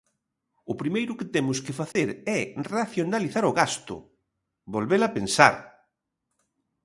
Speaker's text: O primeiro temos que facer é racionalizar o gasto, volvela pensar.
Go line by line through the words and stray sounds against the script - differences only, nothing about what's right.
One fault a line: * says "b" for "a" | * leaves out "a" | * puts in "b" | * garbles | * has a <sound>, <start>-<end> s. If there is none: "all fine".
* puts in "que"
* has a dropout, 1.9-2.0 s